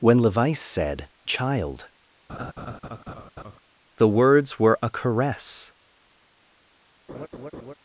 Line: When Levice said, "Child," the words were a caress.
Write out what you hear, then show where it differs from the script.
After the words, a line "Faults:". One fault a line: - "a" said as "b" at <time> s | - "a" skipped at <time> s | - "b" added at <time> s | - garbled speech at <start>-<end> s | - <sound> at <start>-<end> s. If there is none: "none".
When Levice said, "Child," the words were a caress.
Faults:
- laugh at 2.3-3.6 s
- laugh at 7.1-7.7 s